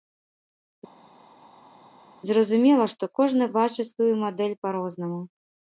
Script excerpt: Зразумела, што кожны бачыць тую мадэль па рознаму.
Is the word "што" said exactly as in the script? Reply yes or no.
yes